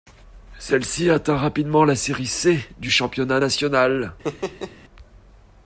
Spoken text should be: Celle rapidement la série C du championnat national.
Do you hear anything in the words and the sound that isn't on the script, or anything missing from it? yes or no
yes